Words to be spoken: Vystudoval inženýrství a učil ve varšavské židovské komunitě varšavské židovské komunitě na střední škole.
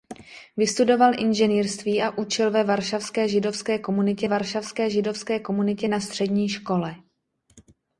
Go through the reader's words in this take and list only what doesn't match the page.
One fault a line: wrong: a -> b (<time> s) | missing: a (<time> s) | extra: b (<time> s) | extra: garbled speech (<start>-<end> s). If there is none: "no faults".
no faults